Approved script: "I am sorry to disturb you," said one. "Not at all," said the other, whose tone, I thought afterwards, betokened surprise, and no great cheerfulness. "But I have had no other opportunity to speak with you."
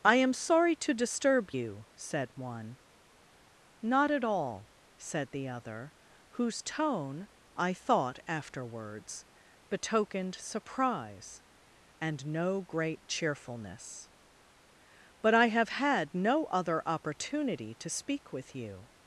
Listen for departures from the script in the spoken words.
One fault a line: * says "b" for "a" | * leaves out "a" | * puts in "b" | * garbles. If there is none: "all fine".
all fine